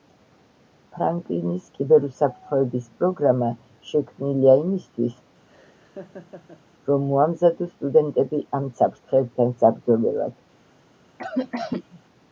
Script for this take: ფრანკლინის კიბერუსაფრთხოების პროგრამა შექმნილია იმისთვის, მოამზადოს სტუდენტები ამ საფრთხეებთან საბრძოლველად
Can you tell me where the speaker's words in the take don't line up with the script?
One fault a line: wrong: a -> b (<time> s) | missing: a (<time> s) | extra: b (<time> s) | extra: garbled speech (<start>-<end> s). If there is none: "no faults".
extra: რომ (6.9 s)